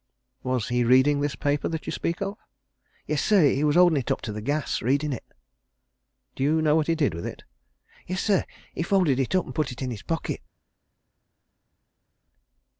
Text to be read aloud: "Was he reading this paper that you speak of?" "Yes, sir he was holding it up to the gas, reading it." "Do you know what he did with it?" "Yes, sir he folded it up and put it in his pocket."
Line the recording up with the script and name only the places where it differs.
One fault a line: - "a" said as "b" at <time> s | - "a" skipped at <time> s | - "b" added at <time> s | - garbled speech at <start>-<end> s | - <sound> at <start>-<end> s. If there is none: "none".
none